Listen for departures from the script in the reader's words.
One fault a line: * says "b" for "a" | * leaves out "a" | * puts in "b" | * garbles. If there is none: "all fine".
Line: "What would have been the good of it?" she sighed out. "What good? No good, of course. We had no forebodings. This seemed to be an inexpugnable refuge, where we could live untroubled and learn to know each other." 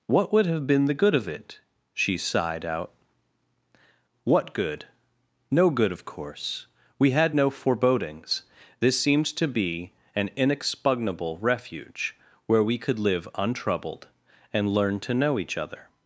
* says "seems" for "seemed"